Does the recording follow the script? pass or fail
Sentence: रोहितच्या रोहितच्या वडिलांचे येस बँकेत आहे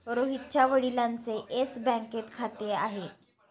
fail